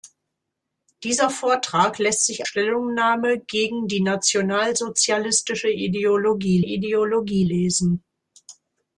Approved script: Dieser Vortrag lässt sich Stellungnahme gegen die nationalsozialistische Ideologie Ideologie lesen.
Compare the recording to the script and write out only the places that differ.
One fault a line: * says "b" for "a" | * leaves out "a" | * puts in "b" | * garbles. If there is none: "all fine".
all fine